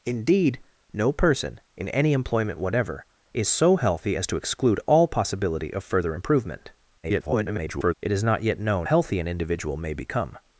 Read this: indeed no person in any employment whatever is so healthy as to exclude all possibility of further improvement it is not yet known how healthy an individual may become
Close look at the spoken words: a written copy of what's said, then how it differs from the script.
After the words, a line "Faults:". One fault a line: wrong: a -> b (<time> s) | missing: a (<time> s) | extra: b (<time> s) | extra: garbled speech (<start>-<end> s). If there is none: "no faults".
indeed no person in any employment whatever is so healthy as to exclude all possibility of further improvement [garbled] it is not yet known healthy an individual may become
Faults:
extra: garbled speech (7.0-7.9 s)
missing: how (8.9 s)